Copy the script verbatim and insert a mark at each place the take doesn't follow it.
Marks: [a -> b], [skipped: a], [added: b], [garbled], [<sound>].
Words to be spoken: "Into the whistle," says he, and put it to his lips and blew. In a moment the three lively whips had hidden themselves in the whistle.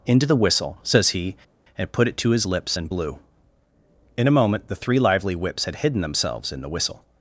"Into the whistle," says he, and put it to his lips and blew. In a moment the three lively whips had hidden themselves in the whistle.